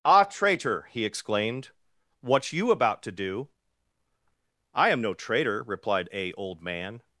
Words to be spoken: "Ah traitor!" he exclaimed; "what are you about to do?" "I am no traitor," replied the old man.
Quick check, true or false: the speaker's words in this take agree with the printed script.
false